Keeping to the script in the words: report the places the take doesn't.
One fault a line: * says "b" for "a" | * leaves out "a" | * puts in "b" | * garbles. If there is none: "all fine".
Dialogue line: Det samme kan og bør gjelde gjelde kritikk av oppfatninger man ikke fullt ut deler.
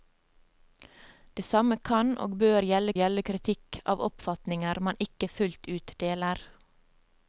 all fine